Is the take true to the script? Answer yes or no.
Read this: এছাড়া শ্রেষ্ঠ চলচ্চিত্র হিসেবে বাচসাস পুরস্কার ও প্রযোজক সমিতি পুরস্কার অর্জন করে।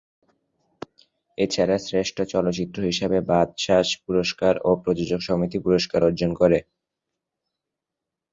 yes